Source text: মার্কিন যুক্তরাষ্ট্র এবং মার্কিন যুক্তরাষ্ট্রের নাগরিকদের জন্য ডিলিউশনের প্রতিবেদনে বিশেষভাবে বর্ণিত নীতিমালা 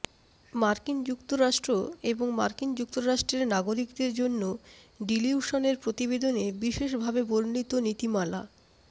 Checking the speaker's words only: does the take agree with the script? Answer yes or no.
yes